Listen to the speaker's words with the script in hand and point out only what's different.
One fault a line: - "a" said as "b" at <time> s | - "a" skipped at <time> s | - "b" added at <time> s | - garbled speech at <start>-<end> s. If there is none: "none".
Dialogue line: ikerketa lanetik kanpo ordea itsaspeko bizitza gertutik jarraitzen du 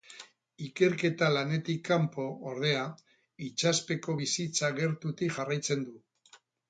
none